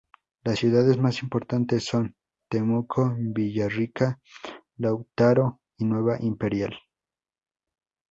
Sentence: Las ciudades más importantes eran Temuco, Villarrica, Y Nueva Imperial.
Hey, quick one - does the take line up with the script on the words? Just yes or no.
no